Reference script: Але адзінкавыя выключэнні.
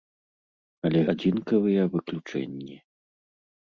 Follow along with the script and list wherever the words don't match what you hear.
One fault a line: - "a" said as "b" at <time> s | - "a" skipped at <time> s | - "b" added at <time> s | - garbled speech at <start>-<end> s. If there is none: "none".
none